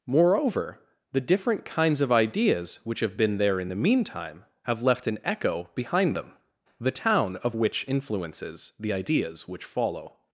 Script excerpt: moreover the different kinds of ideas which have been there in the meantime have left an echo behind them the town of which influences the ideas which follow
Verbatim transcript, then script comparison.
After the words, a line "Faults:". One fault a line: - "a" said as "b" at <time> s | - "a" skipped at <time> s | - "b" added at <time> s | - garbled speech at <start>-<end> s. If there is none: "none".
moreover the different kinds of ideas which have been there in the meantime have left an echo behind them the town of which influences the ideas which follow
Faults:
none